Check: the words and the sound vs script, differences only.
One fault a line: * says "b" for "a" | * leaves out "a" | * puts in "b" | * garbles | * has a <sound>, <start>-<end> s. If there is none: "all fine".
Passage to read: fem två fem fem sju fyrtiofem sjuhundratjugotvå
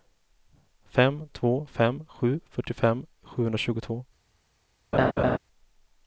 * leaves out "fem"
* has a laugh, 4.9-5.4 s